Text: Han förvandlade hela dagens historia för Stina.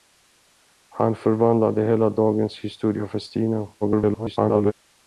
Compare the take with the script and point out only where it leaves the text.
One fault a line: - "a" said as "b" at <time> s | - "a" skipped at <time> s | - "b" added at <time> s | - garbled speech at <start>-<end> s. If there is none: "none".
- garbled speech at 3.8-4.7 s